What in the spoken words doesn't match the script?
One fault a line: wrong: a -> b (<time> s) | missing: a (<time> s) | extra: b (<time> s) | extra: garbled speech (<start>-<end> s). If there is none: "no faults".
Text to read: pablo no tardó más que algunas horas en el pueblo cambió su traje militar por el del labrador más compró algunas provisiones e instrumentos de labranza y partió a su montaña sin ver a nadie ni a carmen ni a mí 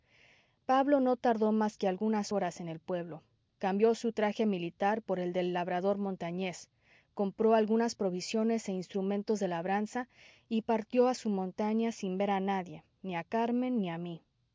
wrong: más -> montañés (6.0 s)